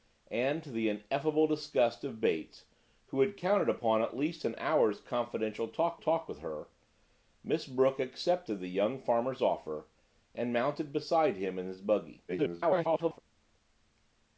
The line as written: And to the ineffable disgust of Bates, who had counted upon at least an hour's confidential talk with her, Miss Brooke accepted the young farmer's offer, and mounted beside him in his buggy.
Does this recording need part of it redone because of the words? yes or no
yes